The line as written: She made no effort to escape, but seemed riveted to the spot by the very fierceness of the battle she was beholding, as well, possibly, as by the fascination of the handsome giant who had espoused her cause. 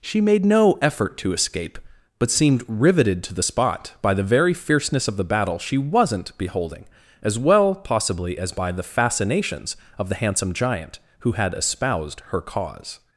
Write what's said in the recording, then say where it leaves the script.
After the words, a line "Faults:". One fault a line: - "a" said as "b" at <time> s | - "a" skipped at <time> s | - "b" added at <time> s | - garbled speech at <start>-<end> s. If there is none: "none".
She made no effort to escape, but seemed riveted to the spot by the very fierceness of the battle she wasn't beholding, as well, possibly, as by the fascinations of the handsome giant who had espoused her cause.
Faults:
- "was" said as "wasn't" at 5.8 s
- "fascination" said as "fascinations" at 8.8 s